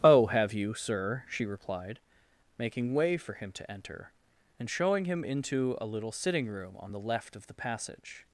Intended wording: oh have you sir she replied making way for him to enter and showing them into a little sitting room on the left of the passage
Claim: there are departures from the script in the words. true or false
true